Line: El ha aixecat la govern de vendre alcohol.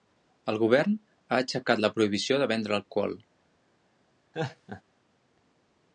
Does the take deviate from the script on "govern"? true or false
true